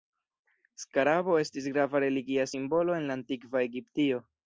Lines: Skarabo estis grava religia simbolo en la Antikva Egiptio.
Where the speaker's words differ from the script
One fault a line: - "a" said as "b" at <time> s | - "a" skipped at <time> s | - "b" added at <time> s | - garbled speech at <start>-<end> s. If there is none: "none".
none